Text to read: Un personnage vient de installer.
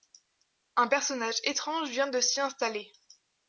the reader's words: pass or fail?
fail